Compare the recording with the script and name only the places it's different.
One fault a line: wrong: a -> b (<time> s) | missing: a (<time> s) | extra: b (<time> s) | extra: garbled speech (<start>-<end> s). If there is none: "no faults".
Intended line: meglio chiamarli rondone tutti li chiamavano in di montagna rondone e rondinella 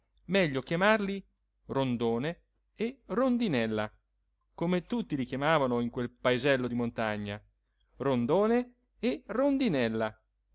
extra: e rondinella come (2.8 s)
extra: quel paesello (5.9 s)